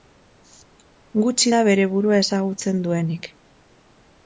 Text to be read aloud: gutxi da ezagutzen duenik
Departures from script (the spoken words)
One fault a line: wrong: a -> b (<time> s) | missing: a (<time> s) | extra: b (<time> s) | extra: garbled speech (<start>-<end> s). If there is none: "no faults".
extra: bere burua (1.7 s)